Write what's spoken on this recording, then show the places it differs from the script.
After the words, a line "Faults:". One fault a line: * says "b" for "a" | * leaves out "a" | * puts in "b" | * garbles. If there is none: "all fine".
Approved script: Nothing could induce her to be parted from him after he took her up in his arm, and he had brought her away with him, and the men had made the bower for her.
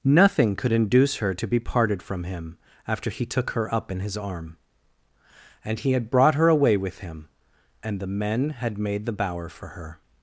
Nothing could induce her to be parted from him after he took her up in his arm, and he had brought her away with him, and the men had made the bower for her.
Faults:
all fine